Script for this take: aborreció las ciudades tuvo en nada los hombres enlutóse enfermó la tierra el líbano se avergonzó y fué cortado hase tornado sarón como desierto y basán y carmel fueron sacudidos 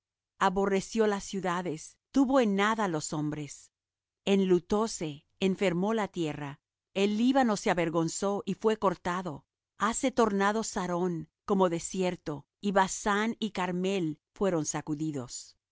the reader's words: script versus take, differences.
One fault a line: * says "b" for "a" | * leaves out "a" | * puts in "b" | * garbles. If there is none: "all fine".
all fine